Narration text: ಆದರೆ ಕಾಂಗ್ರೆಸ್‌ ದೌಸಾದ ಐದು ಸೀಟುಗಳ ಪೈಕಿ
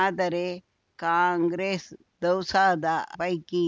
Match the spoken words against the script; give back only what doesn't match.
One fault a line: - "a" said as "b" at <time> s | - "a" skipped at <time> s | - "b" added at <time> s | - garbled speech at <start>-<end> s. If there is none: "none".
- "ಐದು ಸೀಟುಗಳ" skipped at 2.9 s